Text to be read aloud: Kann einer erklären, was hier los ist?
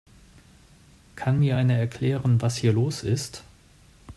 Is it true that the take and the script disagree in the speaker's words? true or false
true